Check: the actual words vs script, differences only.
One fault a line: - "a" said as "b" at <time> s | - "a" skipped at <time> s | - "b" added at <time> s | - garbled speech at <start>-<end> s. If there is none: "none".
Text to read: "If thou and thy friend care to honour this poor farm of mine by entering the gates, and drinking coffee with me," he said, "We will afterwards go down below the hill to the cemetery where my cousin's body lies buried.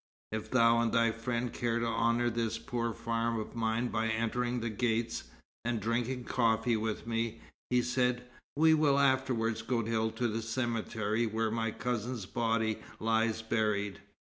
- "down below the" skipped at 9.8 s